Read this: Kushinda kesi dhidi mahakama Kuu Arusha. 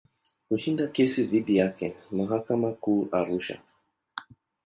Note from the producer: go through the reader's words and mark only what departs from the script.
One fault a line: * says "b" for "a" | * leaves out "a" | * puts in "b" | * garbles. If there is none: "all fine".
* puts in "yake"